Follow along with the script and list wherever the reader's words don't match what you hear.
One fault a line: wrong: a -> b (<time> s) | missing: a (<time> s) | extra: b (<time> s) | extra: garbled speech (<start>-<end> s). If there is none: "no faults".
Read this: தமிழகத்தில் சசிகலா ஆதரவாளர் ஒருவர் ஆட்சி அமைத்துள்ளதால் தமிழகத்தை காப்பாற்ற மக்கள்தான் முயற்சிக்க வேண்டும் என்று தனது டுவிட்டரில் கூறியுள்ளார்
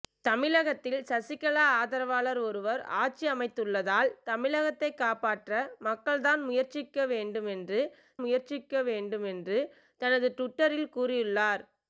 extra: முயற்சிக்க வேண்டும் என்று (8.2 s)